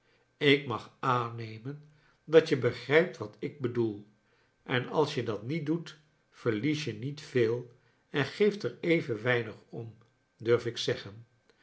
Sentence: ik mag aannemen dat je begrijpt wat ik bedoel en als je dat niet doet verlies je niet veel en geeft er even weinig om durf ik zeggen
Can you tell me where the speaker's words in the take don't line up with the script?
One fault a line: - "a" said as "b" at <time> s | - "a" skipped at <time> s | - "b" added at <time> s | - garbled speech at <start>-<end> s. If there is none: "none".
none